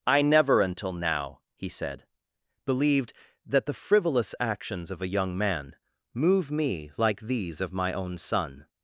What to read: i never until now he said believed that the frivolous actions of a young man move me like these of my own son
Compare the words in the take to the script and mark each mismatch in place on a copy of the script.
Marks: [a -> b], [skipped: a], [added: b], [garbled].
i never until now he said believed that the frivolous actions of a young man move me like these of my own son